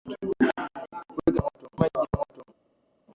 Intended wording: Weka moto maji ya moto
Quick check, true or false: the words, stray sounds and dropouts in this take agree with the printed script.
true